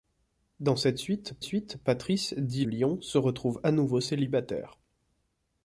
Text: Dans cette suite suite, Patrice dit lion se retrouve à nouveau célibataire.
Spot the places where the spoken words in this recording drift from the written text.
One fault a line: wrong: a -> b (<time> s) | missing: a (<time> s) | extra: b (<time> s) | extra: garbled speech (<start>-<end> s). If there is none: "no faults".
no faults